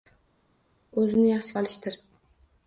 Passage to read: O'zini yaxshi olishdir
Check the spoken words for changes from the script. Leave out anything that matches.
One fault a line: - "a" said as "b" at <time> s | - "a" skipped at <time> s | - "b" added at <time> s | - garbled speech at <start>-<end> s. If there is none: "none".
none